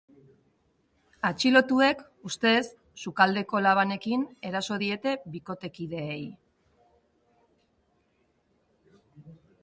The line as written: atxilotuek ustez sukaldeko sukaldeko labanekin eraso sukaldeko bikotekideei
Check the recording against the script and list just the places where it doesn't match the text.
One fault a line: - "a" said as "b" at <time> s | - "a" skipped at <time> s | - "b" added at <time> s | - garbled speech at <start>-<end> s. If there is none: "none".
- "sukaldeko" skipped at 3.6 s
- "sukaldeko" said as "diete" at 4.8 s